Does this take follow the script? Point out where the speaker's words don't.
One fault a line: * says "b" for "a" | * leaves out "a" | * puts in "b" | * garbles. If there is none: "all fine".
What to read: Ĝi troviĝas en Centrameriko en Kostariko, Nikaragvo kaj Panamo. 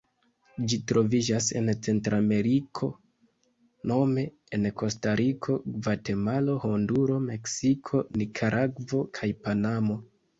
* puts in "nome"
* puts in "Gvatemalo Honduro Meksiko"